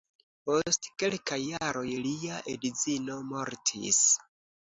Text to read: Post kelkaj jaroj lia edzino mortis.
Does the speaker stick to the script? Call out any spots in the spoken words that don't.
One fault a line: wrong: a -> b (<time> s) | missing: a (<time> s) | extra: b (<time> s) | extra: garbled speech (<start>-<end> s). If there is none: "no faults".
no faults